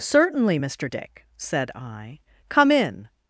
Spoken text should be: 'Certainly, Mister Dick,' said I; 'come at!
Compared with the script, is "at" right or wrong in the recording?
wrong